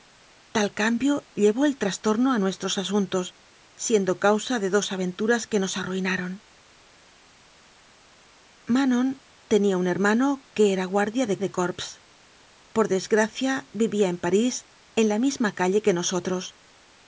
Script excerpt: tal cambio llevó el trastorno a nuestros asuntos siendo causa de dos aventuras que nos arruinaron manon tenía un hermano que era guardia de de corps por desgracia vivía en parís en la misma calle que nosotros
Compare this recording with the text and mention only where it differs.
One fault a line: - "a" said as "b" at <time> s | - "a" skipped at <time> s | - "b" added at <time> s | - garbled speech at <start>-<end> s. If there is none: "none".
none